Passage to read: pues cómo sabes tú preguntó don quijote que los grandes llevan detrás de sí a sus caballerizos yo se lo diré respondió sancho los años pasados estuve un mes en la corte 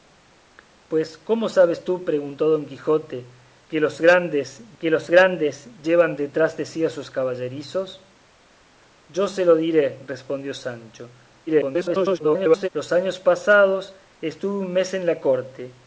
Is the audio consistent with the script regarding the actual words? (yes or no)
no